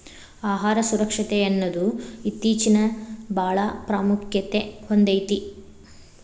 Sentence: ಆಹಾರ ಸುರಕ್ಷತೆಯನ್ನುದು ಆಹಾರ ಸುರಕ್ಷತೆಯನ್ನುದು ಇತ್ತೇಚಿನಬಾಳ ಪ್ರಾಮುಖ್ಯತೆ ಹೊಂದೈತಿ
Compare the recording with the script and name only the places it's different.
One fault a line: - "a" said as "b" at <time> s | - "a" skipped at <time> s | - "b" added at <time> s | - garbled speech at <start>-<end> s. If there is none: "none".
- "ಆಹಾರ ಸುರಕ್ಷತೆಯನ್ನುದು" skipped at 1.8 s